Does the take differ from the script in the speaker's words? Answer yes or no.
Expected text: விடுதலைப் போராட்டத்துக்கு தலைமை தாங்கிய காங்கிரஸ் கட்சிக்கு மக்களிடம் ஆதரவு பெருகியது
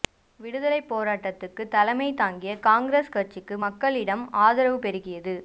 no